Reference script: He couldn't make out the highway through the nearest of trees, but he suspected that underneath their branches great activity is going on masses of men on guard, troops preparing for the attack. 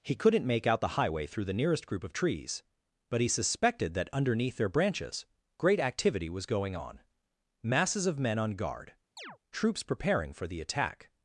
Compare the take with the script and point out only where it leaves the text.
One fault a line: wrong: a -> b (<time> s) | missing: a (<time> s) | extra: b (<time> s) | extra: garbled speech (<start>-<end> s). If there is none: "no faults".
extra: group (1.9 s)
wrong: is -> was (6.3 s)